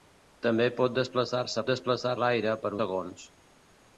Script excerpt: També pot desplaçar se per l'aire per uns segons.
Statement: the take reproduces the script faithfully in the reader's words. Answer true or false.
false